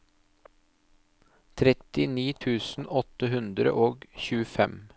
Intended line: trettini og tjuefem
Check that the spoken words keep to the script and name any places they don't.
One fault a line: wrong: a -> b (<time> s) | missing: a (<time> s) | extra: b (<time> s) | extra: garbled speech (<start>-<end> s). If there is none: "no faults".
extra: tusen åtte hundre (2.4 s)